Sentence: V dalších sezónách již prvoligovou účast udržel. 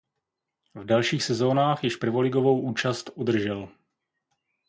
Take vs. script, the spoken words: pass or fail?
pass